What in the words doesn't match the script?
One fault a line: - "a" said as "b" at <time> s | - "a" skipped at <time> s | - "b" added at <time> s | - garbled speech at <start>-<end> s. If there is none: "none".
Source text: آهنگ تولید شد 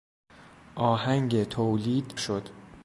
none